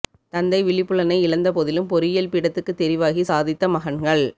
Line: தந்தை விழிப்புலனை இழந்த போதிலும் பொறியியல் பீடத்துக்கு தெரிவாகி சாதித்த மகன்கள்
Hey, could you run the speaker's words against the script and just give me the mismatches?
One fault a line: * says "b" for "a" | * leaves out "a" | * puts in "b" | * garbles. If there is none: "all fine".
all fine